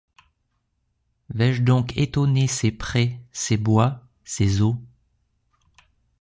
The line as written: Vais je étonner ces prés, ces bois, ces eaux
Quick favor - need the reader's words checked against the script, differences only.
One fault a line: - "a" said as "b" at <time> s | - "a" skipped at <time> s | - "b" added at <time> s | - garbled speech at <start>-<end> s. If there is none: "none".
- "donc" added at 1.6 s